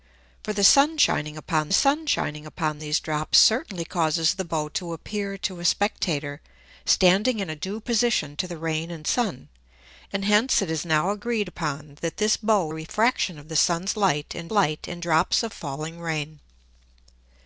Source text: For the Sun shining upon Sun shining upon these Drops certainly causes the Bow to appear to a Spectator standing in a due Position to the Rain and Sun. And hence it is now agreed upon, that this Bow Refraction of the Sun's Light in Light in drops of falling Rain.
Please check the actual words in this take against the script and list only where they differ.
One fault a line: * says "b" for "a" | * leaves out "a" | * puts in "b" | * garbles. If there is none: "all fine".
all fine